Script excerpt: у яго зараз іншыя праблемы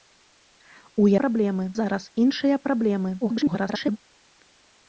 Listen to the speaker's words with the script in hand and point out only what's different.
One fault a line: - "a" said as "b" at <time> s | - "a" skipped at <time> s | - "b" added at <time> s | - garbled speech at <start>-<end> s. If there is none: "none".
- "яго" said as "праблемы" at 1.2 s
- garbled speech at 3.2-4.0 s